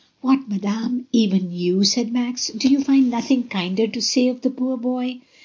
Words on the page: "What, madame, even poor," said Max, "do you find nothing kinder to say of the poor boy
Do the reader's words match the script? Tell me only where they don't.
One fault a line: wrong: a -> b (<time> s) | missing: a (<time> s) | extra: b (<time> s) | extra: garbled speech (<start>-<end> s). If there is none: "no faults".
wrong: poor -> you (1.5 s)